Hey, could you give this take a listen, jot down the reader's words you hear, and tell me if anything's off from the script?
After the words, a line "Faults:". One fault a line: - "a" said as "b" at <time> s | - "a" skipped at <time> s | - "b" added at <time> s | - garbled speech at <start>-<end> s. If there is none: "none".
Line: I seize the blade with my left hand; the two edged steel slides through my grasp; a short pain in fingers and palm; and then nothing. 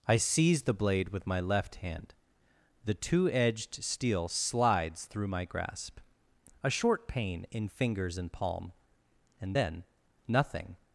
I seize the blade with my left hand; the two edged steel slides through my grasp; a short pain in fingers and palm; and then nothing.
Faults:
none